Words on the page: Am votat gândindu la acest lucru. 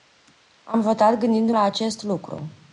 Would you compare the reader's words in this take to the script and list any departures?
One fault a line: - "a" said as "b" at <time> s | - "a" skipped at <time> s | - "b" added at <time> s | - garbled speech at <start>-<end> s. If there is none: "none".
none